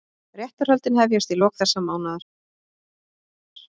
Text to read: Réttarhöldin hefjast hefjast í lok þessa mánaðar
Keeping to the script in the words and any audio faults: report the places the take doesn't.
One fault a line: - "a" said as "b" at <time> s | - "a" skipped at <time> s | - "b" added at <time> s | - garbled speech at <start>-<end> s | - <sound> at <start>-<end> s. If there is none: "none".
- "hefjast" skipped at 1.4 s